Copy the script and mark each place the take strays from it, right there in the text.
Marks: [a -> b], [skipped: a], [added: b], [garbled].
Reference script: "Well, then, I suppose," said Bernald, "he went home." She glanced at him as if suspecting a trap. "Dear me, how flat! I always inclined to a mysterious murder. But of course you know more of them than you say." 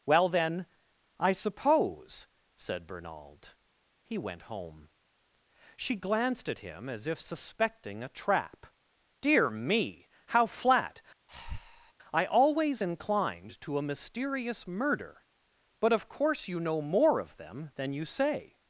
"Well, then, I suppose," said Bernald, "he went home." She glanced at him as if suspecting a trap. "Dear me, how flat! I always inclined to a mysterious murder. But of course you know more of them than you say."